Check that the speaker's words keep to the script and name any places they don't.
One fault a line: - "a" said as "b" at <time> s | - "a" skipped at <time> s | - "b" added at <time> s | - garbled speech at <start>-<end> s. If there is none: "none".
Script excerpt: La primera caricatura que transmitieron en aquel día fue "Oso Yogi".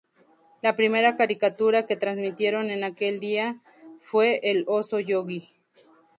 - "El" added at 4.4 s